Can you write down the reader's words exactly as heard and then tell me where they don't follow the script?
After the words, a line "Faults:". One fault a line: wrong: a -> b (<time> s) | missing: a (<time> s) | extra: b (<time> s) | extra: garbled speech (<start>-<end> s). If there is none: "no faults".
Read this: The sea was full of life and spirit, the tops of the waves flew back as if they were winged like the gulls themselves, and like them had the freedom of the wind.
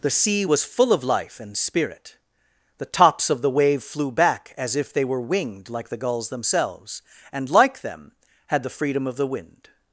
The sea was full of life and spirit, the tops of the wave flew back as if they were winged like the gulls themselves, and like them had the freedom of the wind.
Faults:
wrong: waves -> wave (3.5 s)